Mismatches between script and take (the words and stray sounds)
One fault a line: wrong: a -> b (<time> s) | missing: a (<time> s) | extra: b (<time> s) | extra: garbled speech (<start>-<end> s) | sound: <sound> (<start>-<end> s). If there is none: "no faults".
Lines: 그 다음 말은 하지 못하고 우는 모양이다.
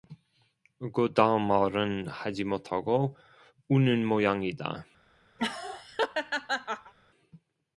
sound: laugh (5.4-6.9 s)